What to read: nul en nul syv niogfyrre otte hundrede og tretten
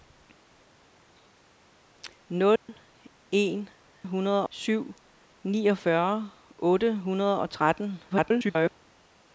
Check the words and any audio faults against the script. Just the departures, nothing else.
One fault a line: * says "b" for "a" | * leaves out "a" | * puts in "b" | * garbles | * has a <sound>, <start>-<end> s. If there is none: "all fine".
* has a dropout, 2.6-2.7 s
* says "hundrede" for "nul"
* garbles